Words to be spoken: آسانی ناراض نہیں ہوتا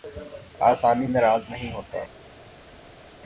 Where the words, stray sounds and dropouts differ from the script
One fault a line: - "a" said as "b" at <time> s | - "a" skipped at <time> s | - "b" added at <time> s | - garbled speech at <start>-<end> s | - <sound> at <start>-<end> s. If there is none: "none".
none